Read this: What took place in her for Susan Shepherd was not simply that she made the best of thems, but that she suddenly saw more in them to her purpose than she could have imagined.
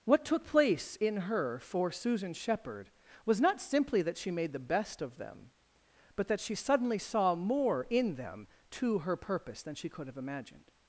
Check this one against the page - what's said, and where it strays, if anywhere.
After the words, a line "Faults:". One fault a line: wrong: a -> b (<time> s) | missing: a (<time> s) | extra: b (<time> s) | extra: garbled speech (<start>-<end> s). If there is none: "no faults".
What took place in her for Susan Shepherd was not simply that she made the best of them, but that she suddenly saw more in them to her purpose than she could have imagined.
Faults:
wrong: thems -> them (5.2 s)